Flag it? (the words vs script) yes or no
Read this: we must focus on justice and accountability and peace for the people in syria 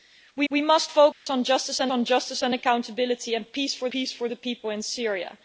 yes